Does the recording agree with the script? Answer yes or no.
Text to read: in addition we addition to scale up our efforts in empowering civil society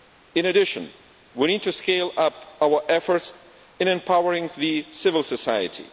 no